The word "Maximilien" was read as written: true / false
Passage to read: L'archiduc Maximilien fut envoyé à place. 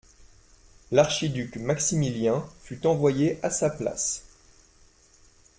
true